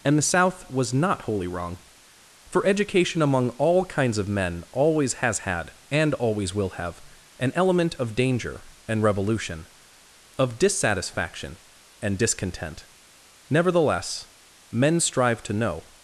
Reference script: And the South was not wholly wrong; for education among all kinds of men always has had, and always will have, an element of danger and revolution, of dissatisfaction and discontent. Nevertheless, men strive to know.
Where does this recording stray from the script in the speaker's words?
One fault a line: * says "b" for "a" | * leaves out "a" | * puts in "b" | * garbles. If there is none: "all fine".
all fine